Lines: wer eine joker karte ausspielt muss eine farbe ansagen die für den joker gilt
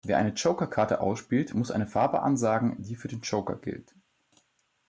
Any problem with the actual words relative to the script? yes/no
no